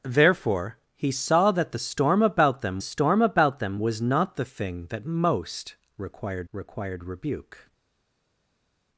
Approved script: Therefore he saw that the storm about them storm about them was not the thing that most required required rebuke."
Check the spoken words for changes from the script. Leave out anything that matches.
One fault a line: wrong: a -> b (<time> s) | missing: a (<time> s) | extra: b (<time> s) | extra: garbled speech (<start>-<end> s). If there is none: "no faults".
no faults